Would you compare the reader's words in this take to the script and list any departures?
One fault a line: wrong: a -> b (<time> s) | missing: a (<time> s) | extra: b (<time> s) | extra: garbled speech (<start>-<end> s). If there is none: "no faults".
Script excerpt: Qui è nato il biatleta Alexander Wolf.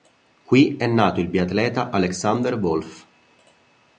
no faults